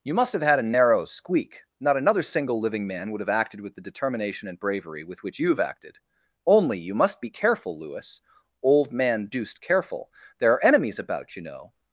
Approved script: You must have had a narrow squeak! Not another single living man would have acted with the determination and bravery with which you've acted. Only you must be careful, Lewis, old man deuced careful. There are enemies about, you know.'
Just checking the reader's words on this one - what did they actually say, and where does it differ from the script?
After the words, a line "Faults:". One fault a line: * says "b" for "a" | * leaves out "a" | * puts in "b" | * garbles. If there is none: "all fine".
You must have had a narrow squeak! Not another single living man would have acted with the determination and bravery with which you've acted. Only you must be careful, Lewis, old man deuced careful. There are enemies about, you know.'
Faults:
all fine